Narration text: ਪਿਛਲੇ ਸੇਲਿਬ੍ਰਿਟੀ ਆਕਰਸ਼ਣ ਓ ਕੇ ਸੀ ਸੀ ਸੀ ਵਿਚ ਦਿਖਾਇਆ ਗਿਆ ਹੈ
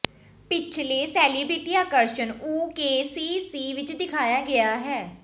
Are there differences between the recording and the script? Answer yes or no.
yes